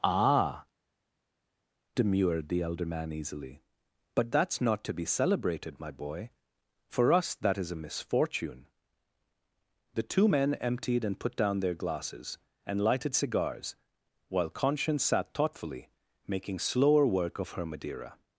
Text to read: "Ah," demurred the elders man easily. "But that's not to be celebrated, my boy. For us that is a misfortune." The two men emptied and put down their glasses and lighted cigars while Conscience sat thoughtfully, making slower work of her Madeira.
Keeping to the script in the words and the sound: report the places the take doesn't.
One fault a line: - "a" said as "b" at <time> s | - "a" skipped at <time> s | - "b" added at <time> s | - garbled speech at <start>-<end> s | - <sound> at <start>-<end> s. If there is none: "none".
- "elders" said as "elder" at 2.6 s